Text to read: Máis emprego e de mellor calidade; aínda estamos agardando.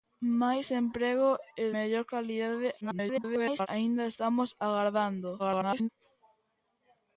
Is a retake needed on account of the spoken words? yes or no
yes